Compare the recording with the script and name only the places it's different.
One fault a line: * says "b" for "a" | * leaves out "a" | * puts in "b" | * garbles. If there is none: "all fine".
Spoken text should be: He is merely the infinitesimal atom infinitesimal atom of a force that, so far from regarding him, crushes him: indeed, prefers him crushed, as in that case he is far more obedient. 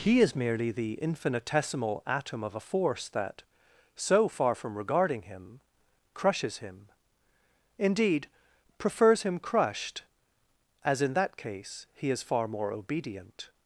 * leaves out "infinitesimal atom"